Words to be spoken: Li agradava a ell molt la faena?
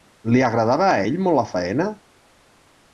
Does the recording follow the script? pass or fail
pass